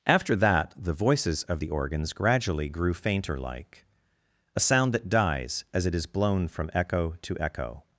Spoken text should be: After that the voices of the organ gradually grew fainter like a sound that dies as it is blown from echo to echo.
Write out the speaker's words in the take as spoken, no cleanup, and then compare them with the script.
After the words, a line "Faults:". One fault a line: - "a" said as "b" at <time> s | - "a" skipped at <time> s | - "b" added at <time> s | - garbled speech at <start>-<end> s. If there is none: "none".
After that the voices of the organs gradually grew fainter like a sound that dies as it is blown from echo to echo.
Faults:
- "organ" said as "organs" at 1.7 s